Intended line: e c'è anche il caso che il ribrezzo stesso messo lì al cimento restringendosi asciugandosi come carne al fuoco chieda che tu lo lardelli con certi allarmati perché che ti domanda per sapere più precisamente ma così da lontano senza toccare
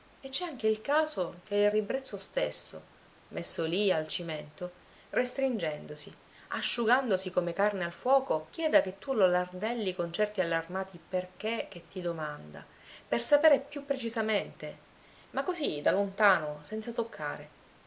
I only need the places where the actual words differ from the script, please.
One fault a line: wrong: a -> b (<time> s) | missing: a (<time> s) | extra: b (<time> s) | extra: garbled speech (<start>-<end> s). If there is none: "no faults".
no faults